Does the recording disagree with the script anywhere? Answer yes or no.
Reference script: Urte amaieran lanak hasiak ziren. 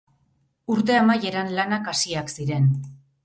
no